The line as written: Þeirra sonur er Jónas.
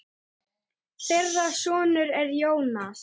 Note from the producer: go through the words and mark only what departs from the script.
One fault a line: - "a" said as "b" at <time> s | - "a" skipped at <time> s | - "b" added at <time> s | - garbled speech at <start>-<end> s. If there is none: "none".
none